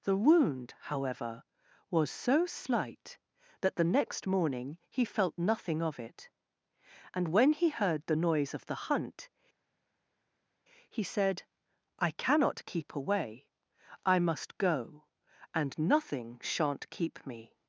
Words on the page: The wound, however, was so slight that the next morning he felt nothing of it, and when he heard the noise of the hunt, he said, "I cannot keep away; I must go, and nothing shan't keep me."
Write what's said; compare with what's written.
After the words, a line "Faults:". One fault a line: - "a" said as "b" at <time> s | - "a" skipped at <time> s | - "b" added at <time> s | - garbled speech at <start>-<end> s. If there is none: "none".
The wound, however, was so slight that the next morning he felt nothing of it, and when he heard the noise of the hunt, he said, "I cannot keep away; I must go, and nothing shan't keep me."
Faults:
none